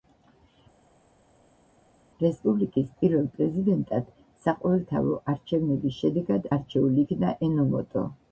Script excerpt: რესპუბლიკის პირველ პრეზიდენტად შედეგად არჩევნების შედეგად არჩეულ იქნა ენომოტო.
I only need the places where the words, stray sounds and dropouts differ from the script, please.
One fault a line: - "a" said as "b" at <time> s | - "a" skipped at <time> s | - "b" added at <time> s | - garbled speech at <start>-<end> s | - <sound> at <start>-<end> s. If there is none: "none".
- "შედეგად" said as "საყოველთაო" at 4.5 s